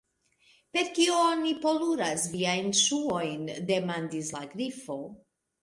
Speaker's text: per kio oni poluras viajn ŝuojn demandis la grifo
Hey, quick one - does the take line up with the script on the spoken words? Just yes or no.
yes